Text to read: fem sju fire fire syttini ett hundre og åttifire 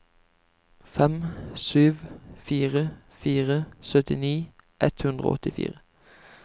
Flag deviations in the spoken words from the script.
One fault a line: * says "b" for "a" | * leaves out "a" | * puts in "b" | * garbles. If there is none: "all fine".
all fine